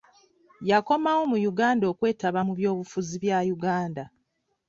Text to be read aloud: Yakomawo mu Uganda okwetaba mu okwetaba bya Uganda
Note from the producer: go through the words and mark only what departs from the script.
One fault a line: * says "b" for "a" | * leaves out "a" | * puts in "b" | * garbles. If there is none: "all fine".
* says "byobufuzi" for "okwetaba"